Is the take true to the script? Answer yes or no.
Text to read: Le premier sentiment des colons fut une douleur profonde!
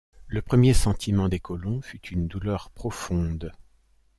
yes